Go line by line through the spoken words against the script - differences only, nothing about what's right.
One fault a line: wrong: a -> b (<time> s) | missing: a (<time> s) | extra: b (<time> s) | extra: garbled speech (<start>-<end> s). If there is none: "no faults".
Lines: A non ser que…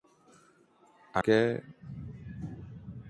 missing: non ser (1.2 s)